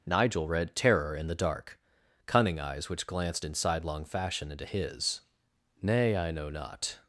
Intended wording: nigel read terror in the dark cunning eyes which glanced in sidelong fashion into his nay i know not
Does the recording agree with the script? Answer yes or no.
yes